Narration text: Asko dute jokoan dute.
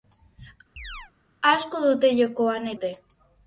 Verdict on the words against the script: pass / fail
pass